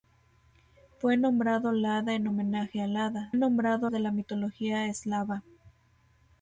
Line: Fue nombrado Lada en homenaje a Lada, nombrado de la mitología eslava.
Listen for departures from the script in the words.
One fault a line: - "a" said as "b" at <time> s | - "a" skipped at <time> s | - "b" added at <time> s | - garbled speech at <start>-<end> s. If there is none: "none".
none